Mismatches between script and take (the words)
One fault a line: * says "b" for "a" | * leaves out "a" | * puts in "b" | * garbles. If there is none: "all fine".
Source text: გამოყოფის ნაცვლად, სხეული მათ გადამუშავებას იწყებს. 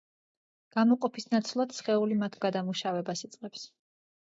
all fine